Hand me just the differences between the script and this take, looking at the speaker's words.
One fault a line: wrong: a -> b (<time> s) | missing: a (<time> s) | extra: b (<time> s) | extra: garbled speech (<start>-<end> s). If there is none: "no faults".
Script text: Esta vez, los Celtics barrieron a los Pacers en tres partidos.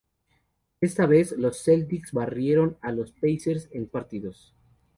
missing: tres (3.9 s)